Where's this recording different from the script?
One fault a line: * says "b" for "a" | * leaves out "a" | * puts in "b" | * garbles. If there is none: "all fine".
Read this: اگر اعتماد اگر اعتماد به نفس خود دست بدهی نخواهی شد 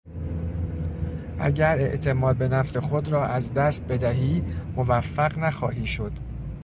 * leaves out "اگر اعتماد"
* puts in "را از"
* puts in "موفق"